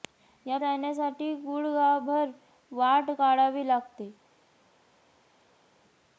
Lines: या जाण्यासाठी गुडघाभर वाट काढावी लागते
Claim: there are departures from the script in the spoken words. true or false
false